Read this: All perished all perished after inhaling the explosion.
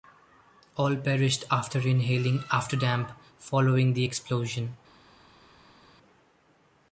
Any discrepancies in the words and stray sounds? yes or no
yes